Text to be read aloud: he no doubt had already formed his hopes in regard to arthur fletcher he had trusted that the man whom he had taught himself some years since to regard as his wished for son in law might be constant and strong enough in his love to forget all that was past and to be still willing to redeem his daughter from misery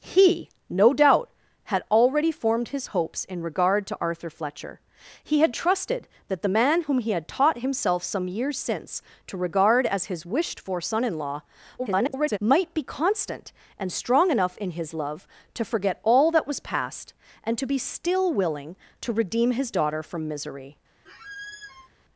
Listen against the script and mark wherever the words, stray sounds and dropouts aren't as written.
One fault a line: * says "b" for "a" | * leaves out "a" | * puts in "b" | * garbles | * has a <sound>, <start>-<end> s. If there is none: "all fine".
* garbles
* has a squeak, 21.1-21.9 s